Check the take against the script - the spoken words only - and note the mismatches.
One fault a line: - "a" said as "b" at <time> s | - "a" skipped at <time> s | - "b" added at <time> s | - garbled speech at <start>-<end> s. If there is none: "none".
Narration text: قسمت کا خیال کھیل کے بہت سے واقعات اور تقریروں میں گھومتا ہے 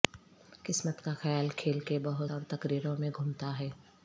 - "سے واقعات" skipped at 2.3 s